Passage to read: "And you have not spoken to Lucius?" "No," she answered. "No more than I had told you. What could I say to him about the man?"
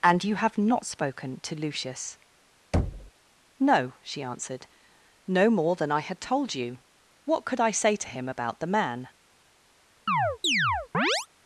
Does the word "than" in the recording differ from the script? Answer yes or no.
no